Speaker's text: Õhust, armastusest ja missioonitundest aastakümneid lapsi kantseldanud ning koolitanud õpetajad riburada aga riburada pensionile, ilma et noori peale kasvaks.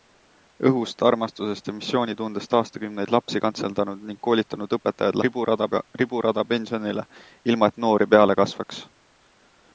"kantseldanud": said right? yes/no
yes